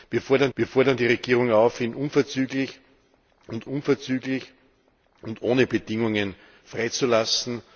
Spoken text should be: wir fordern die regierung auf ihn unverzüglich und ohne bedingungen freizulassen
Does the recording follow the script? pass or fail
fail